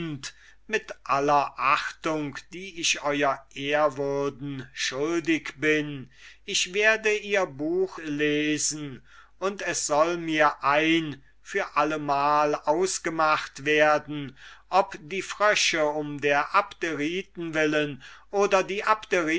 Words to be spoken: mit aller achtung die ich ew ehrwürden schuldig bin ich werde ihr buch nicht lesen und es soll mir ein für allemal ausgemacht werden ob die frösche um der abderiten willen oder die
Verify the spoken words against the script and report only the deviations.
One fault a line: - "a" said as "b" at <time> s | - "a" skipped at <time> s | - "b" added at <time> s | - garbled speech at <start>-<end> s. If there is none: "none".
- "nicht" skipped at 8.0 s